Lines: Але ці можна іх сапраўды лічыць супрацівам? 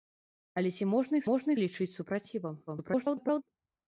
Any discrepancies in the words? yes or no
yes